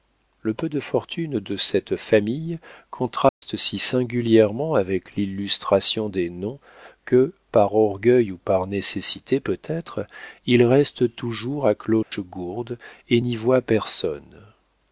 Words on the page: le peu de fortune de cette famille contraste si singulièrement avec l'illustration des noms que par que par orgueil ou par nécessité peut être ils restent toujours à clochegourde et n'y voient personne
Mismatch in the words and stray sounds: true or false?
true